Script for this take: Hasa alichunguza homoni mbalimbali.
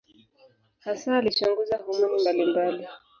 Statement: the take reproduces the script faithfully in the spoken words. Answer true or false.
true